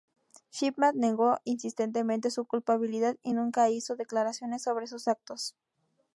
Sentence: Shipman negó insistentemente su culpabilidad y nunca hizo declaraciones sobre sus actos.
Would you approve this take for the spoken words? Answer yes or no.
yes